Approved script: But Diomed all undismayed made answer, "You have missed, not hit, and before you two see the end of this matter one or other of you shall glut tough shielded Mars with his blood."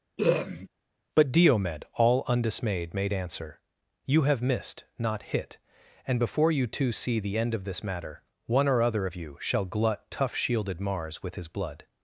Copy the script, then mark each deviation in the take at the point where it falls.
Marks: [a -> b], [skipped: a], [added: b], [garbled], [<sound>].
[throat clearing] But Diomed all undismayed made answer, "You have missed, not hit, and before you two see the end of this matter one or other of you shall glut tough shielded Mars with his blood."